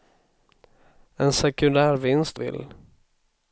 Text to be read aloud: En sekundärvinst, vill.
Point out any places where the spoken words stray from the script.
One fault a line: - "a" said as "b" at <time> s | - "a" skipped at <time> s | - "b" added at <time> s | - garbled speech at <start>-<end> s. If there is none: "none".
none